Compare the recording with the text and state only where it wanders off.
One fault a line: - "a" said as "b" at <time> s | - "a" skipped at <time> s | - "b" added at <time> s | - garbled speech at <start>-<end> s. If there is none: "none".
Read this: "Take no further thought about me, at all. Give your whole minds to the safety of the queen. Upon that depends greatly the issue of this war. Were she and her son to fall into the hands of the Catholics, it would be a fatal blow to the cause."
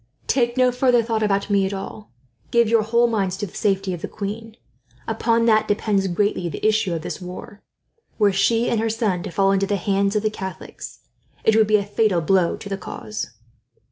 none